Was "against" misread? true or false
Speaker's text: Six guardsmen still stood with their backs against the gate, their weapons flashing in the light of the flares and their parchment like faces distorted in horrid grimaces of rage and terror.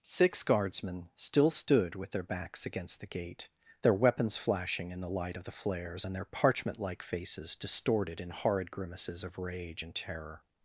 false